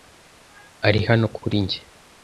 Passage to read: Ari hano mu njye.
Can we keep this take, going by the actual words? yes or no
no